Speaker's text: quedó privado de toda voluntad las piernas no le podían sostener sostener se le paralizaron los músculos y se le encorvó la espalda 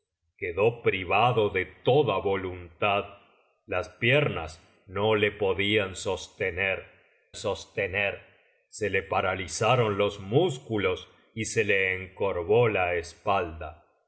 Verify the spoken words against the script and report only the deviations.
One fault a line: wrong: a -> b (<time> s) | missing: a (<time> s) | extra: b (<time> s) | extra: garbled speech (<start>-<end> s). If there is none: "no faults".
no faults